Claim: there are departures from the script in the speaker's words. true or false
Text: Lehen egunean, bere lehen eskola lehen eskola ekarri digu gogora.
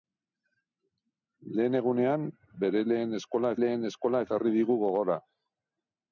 false